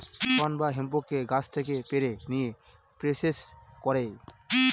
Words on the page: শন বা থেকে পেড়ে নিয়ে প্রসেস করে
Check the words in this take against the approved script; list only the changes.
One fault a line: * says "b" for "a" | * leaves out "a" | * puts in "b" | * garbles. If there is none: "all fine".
* puts in "হেম্পকে গাছ"